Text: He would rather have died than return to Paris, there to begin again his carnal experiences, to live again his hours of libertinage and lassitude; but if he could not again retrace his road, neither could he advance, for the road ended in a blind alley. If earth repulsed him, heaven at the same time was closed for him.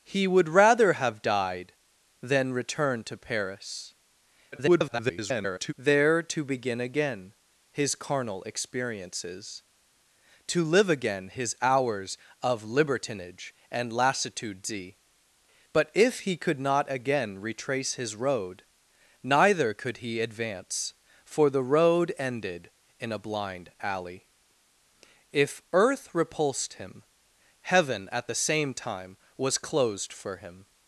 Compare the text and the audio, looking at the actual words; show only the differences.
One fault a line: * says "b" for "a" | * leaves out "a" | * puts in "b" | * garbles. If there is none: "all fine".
* garbles